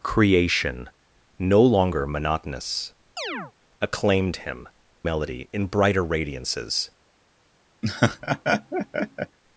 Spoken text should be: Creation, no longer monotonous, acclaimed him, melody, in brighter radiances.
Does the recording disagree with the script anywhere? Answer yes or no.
no